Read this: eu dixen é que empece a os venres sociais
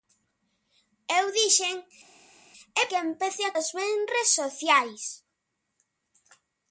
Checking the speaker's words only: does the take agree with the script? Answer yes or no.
yes